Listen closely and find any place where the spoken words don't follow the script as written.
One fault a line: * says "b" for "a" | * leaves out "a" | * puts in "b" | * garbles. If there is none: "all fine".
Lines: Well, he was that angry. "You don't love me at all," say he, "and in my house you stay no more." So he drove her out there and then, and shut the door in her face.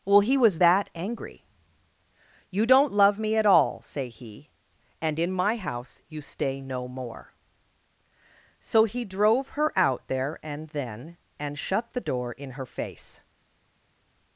all fine